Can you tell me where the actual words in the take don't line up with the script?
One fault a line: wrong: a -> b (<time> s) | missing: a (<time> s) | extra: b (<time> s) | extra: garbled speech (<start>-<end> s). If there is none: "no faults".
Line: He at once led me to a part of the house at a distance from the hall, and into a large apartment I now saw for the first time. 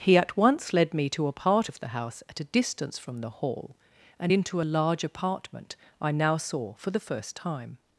no faults